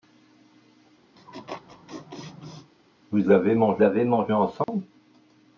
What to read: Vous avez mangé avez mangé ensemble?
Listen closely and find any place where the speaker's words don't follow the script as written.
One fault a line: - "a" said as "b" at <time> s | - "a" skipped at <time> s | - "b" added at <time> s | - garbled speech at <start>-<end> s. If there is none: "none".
none